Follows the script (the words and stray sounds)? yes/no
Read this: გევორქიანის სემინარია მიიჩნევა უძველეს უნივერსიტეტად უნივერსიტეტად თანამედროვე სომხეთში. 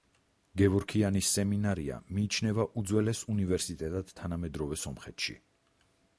no